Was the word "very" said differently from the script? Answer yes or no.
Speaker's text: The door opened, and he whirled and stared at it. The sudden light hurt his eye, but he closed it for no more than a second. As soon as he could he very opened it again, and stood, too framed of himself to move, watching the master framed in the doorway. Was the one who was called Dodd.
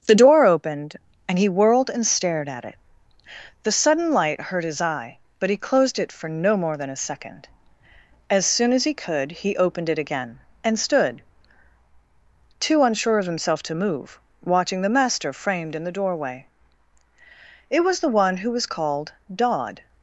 yes